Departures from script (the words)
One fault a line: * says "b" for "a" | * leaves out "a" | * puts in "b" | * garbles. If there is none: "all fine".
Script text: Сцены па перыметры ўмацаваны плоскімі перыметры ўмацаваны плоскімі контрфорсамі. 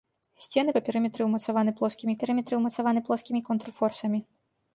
all fine